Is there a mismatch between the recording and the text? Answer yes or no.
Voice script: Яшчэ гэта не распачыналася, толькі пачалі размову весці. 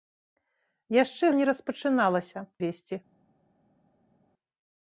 yes